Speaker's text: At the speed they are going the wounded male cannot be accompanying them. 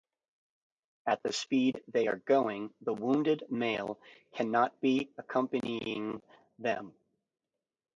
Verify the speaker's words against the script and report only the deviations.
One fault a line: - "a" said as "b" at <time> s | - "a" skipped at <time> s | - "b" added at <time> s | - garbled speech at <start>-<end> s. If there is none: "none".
none